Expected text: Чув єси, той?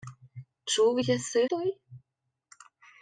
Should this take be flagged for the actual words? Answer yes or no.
no